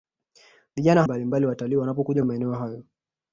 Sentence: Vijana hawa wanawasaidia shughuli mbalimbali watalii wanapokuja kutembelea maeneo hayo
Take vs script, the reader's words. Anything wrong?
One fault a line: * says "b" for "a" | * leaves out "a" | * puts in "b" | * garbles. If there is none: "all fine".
* leaves out "hawa wanawasaidia shughuli"
* leaves out "kutembelea"